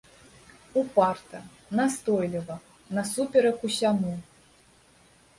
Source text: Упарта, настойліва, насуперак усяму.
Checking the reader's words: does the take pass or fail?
pass